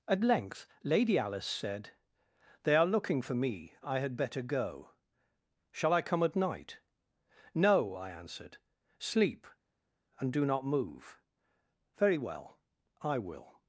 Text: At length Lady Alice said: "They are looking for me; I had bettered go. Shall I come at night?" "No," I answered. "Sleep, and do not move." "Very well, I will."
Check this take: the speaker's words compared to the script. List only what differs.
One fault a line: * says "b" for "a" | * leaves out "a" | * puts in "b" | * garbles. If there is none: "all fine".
* says "better" for "bettered"